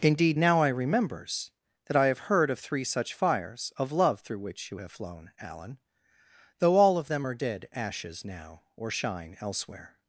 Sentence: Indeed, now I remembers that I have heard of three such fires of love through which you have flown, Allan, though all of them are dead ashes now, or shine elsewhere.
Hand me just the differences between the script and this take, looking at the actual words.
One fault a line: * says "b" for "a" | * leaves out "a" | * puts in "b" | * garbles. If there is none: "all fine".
all fine